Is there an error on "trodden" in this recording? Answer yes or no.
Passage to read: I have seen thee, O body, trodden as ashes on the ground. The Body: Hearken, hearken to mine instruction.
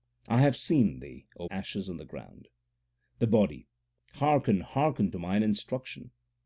yes